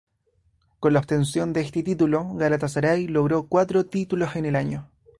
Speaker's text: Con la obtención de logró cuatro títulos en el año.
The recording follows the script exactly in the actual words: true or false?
false